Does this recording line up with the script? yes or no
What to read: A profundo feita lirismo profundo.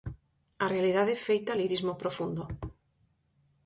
no